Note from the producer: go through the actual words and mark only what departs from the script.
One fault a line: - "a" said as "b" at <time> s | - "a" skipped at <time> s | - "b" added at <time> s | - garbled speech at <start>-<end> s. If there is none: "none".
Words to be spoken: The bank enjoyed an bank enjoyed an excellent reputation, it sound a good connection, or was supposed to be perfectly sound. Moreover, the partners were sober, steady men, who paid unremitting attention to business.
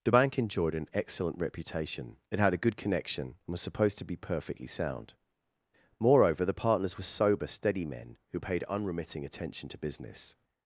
- "bank enjoyed an" skipped at 0.9 s
- "sound" said as "had" at 2.4 s
- "or" said as "and" at 3.3 s